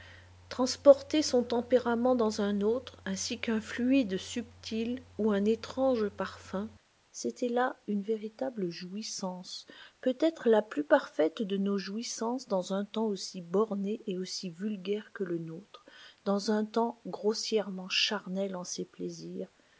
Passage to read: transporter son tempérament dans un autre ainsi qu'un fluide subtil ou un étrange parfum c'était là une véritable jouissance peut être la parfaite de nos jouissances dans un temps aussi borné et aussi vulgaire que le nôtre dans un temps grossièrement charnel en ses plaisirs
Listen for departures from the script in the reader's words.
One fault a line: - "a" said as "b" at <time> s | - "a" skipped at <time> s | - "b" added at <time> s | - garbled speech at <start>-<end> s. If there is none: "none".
- "plus" added at 10.6 s